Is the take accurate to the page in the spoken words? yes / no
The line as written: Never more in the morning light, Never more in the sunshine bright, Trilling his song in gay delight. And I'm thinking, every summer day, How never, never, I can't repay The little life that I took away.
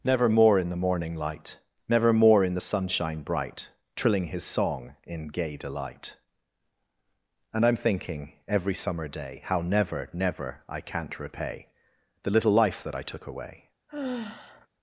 yes